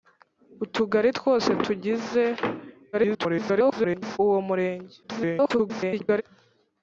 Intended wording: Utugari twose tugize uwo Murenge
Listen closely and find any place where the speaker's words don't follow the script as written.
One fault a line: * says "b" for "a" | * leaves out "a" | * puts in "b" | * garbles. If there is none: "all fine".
* garbles
* garbles